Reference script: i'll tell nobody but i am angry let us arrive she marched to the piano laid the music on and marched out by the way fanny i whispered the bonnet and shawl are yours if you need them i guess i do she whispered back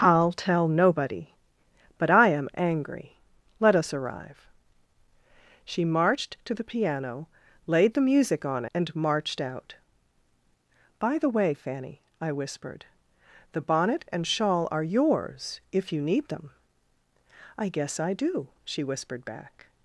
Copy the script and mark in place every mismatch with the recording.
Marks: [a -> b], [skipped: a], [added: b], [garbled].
i'll tell nobody but i am angry let us arrive she marched to the piano laid the music on and marched out by the way fanny i whispered the bonnet and shawl are yours if you need them i guess i do she whispered back